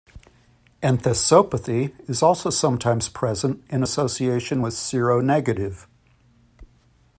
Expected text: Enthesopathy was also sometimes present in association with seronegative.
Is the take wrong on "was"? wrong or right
wrong